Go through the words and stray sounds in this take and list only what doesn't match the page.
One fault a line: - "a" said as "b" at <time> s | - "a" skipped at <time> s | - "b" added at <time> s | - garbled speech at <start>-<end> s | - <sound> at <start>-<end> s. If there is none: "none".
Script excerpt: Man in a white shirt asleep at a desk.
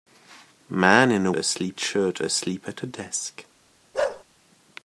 - "white" said as "asleep" at 1.3 s
- bark at 3.9-4.2 s